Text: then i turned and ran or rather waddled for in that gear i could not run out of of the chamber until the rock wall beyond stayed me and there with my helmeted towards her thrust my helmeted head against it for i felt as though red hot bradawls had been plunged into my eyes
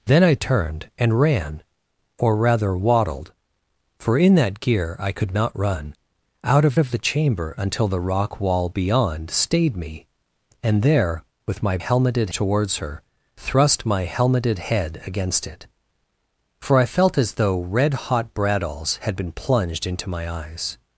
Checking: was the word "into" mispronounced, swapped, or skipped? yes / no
no